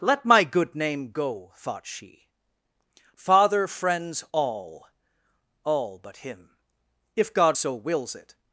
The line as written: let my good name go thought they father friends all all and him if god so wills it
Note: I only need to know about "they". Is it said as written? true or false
false